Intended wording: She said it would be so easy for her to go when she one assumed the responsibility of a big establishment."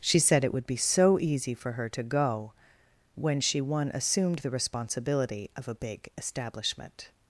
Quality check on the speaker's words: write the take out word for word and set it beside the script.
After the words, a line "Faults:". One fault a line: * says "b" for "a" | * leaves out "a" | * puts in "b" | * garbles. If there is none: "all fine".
She said it would be so easy for her to go when she one assumed the responsibility of a big establishment."
Faults:
all fine